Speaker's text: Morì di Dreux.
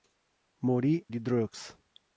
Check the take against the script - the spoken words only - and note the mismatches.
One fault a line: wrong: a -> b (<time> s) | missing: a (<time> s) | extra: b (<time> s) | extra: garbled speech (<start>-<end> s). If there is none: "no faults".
no faults